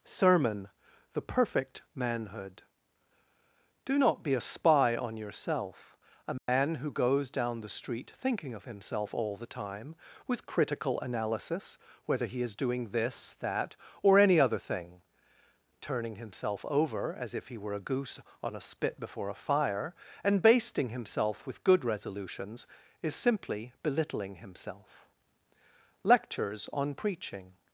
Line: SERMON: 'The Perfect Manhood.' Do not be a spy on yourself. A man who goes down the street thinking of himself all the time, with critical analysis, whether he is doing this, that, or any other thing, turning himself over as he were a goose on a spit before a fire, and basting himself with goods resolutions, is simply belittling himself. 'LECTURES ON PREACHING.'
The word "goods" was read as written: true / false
false